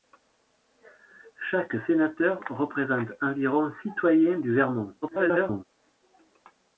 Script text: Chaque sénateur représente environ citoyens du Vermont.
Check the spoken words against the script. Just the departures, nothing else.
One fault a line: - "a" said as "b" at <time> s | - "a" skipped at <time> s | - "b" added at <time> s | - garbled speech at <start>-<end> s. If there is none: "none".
- garbled speech at 5.0-5.6 s